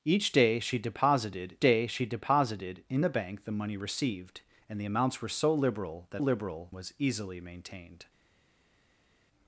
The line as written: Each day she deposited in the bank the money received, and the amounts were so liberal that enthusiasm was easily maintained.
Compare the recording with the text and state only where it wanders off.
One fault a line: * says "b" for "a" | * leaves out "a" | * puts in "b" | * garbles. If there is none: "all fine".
* puts in "day she deposited"
* says "liberal" for "enthusiasm"